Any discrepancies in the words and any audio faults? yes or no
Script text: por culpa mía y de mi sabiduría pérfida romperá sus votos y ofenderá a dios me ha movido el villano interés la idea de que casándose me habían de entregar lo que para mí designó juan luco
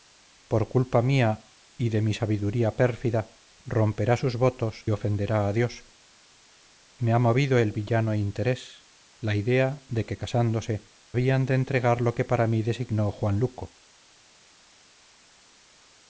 yes